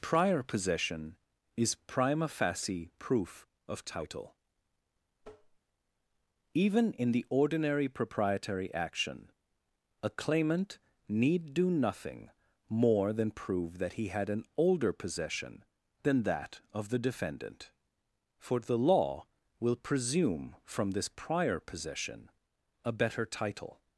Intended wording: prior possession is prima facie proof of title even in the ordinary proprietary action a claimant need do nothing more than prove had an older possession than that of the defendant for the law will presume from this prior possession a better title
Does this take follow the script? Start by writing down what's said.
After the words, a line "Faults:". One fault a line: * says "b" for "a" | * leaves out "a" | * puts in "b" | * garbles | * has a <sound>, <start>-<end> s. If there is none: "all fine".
prior possession is prima facie proof of title even in the ordinary proprietary action a claimant need do nothing more than prove that he had an older possession than that of the defendant for the law will presume from this prior possession a better title
Faults:
* has a tap, 5.2-5.6 s
* puts in "that he"